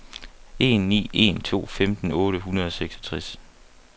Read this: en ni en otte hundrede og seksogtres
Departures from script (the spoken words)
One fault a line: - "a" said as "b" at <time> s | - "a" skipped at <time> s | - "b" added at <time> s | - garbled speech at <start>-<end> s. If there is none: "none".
- "to femten" added at 1.4 s